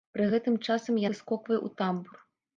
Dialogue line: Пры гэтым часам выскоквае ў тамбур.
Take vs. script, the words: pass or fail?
pass